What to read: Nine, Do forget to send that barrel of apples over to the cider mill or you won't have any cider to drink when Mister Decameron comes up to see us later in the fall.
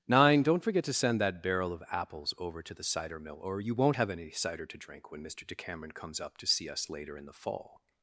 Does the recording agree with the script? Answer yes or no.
no